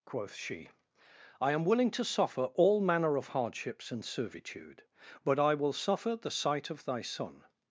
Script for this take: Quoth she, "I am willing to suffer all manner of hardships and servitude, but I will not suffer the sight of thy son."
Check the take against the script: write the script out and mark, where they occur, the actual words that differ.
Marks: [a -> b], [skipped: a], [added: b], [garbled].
Quoth she, "I am willing to suffer all manner of hardships and servitude, but I will [skipped: not] suffer the sight of thy son."